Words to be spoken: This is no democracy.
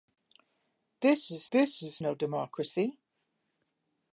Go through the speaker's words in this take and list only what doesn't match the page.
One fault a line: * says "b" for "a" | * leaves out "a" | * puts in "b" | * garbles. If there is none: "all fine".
* puts in "this is"